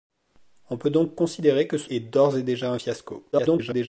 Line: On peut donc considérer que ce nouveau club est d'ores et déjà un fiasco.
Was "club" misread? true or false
true